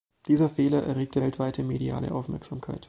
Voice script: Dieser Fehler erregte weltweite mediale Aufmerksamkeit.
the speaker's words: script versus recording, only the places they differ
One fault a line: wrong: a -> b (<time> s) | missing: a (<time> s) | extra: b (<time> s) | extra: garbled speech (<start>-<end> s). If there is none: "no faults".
no faults